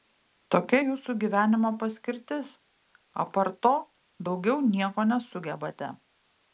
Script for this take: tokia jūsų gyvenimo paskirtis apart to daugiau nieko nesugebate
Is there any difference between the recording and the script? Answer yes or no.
no